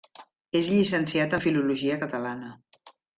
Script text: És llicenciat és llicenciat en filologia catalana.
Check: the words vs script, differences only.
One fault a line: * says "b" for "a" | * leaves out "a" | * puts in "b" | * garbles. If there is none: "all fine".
* leaves out "és llicenciat"